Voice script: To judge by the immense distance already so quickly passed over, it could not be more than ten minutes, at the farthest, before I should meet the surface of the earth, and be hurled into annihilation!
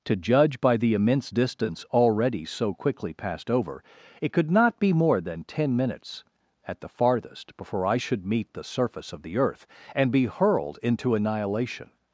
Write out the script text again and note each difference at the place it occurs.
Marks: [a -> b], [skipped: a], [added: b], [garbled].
To judge by the immense distance already so quickly passed over, it could not be more than ten minutes, at the farthest, before I should meet the surface of the earth, and be hurled into annihilation!